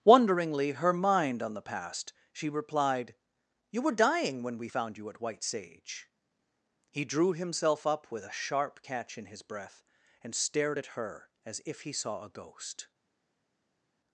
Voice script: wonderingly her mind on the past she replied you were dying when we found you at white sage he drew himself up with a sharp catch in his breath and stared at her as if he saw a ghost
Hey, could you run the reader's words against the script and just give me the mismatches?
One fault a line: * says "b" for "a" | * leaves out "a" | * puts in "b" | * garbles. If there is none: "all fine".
all fine